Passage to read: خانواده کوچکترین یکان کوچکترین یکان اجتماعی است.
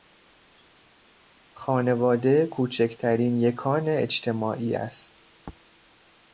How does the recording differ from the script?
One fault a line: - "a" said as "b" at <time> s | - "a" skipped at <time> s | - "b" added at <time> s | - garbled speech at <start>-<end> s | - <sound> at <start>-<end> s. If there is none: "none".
- laugh at 0.5-1.0 s
- "کوچکترین یکان" skipped at 3.9 s